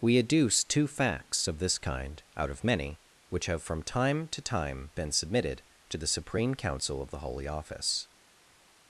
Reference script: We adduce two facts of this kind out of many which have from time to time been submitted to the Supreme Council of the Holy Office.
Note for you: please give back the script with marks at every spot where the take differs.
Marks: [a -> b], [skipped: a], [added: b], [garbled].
We adduce two facts of this kind out of many which have from time to time been submitted to the Supreme Council of the Holy Office.